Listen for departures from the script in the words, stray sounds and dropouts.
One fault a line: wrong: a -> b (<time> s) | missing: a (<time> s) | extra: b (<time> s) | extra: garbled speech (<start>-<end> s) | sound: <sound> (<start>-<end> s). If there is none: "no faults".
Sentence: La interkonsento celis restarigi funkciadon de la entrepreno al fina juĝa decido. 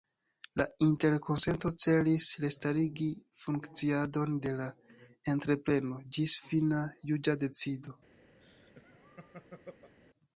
wrong: al -> ĝis (6.2 s)
sound: laugh (8.4-10.0 s)